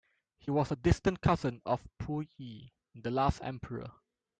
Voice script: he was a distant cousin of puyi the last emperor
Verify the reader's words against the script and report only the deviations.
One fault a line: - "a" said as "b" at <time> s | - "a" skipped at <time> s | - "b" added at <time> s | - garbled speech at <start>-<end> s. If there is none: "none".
none